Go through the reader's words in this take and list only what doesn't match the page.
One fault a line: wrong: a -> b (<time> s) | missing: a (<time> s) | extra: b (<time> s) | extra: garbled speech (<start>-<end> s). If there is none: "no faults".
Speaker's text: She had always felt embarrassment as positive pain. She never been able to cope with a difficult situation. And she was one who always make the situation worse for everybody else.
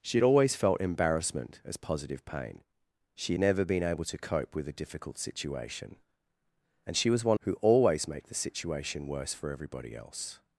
no faults